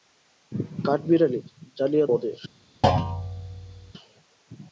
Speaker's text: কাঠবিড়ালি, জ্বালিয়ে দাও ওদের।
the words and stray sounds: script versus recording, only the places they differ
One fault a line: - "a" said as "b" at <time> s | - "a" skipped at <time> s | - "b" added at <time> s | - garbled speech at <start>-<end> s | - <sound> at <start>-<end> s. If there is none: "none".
- "দাও" skipped at 2.0 s
- thud at 2.8-3.9 s